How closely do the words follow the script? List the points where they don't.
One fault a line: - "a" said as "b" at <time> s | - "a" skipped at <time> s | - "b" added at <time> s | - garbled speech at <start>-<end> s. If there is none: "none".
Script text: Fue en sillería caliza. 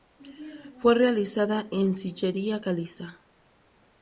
- "realizada" added at 0.9 s